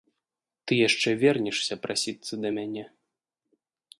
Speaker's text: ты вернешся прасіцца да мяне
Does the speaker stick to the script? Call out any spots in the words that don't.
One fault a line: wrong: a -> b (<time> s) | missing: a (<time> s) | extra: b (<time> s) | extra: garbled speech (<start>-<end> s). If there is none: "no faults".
extra: яшчэ (0.9 s)